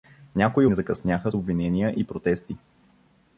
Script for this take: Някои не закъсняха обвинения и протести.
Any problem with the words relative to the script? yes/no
no